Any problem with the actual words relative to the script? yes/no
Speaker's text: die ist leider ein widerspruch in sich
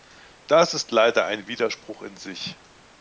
yes